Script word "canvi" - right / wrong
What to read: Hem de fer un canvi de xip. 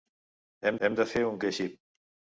wrong